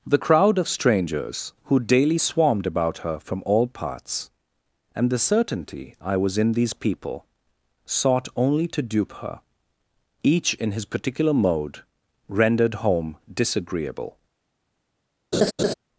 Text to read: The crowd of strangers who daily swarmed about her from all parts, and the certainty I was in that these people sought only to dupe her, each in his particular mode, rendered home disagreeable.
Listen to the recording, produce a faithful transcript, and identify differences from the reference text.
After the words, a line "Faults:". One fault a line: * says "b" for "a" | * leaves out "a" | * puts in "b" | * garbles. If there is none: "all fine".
The crowd of strangers who daily swarmed about her from all parts, and the certainty I was in these people sought only to dupe her, each in his particular mode, rendered home disagreeable.
Faults:
* leaves out "that"